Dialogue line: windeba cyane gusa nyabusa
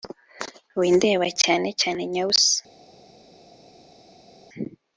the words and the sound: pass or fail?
fail